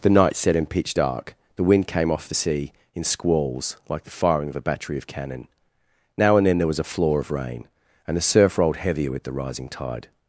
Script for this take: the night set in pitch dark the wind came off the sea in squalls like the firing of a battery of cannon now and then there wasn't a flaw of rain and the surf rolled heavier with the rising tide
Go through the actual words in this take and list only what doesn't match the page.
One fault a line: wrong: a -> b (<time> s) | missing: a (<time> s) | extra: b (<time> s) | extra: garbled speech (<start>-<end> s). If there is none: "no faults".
wrong: wasn't -> was (6.7 s)